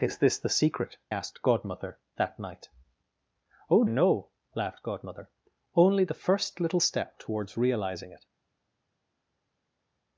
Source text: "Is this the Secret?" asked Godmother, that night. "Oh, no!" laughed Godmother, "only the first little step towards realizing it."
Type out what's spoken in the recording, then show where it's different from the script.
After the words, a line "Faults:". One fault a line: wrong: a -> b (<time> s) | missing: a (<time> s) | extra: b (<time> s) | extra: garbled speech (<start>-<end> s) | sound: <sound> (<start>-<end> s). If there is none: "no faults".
"Is this the Secret?" asked Godmother, that night. "Oh, no!" laughed Godmother, "only the first little step towards realizing it."
Faults:
no faults